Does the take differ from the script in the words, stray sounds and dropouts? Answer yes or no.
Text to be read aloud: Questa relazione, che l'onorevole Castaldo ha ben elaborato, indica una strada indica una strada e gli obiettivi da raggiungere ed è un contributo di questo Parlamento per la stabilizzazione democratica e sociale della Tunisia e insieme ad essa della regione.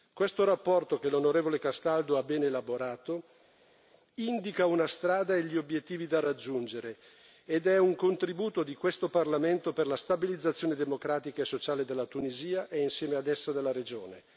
yes